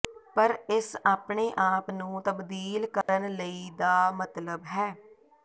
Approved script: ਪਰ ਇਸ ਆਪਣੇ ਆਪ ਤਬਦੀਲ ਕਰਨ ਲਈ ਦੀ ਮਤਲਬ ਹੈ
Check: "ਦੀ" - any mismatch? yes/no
yes